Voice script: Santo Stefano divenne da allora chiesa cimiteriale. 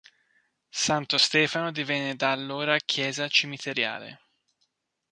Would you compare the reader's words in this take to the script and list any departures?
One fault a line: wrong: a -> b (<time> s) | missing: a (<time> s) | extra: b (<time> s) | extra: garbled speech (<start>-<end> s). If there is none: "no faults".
no faults